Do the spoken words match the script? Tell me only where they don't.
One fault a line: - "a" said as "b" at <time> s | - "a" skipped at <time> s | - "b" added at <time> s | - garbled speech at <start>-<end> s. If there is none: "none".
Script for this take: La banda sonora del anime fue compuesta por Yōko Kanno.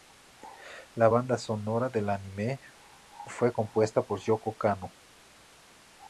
none